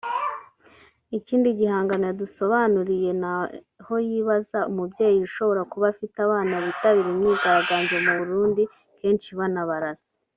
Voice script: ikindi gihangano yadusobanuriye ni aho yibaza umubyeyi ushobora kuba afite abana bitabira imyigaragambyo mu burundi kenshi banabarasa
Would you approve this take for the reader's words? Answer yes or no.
yes